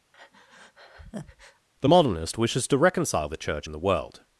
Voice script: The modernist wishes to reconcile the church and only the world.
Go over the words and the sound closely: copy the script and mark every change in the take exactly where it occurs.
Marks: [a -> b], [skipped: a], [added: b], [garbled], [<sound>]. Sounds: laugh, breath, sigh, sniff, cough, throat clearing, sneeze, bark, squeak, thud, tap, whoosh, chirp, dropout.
[breath] The modernist wishes to reconcile the church and [skipped: only] the world.